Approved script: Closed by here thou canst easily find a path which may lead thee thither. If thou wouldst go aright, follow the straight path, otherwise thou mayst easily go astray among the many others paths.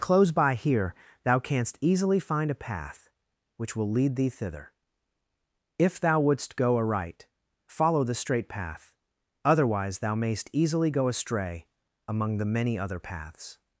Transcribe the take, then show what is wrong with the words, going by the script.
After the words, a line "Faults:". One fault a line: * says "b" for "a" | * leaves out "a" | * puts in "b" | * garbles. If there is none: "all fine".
Close by here thou canst easily find a path which will lead thee thither. If thou wouldst go aright, follow the straight path, otherwise thou mayst easily go astray among the many other paths.
Faults:
* says "Close" for "Closed"
* says "will" for "may"
* says "other" for "others"